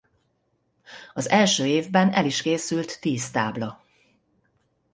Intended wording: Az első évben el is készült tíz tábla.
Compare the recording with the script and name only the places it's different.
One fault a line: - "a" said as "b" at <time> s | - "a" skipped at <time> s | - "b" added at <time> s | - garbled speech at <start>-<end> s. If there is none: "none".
none